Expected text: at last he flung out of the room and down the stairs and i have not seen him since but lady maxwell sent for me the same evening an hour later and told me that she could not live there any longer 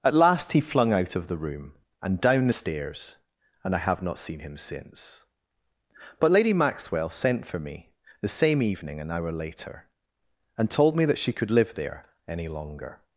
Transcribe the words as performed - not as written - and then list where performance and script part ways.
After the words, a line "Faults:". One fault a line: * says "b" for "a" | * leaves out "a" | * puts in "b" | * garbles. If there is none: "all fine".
at last he flung out of the room and down the stairs and i have not seen him since but lady maxwell sent for me the same evening an hour later and told me that she could live there any longer
Faults:
* leaves out "not"